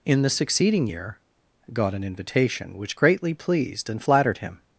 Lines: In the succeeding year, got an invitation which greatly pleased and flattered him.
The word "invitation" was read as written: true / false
true